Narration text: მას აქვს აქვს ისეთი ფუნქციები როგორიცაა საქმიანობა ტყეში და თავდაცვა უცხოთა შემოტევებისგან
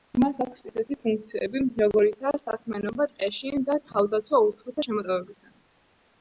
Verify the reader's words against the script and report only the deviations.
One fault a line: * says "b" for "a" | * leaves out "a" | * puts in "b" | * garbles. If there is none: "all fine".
* leaves out "აქვს"